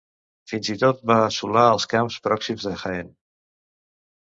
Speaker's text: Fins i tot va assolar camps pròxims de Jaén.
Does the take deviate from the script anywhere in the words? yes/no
yes